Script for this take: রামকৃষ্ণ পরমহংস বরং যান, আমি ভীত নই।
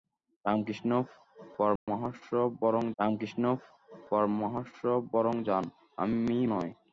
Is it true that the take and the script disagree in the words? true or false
true